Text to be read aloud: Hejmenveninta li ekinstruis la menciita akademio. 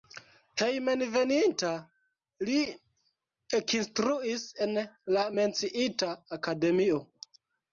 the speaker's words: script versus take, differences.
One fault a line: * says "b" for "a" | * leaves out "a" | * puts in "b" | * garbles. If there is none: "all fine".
* puts in "en"